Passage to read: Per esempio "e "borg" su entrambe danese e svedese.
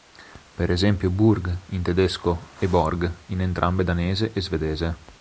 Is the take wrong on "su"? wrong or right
wrong